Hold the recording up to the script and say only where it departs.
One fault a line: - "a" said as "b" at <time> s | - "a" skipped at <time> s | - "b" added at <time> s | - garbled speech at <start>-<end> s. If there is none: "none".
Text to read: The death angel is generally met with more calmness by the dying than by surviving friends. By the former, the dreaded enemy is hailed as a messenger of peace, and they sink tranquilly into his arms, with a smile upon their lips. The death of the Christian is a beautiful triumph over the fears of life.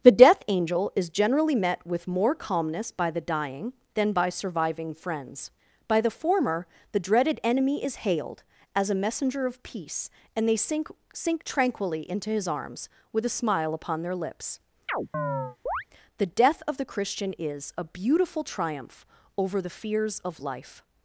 - "sink" added at 11.1 s